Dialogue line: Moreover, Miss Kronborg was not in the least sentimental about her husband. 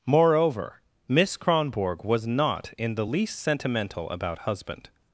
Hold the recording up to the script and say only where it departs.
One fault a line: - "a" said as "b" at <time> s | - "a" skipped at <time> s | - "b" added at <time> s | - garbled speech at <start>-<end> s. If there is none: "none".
- "her" skipped at 4.4 s